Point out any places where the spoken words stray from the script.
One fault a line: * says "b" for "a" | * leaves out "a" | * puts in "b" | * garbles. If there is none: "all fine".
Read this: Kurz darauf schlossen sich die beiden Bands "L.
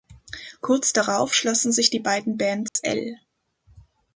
all fine